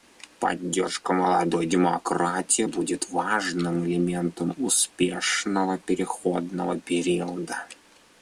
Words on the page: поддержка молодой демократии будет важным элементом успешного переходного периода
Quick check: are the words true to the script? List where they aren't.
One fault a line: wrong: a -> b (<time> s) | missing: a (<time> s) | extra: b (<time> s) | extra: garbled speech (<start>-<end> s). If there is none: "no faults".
no faults